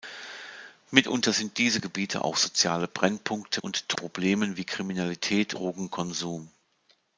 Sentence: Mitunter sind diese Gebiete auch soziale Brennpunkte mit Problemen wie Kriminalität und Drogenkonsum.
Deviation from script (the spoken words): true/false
true